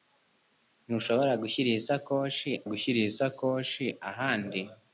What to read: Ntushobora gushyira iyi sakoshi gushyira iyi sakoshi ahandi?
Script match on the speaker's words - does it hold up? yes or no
yes